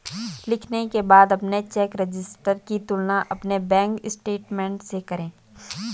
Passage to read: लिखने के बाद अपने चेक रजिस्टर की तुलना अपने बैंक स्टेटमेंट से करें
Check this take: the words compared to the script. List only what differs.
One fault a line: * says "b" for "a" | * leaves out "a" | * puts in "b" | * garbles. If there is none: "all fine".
all fine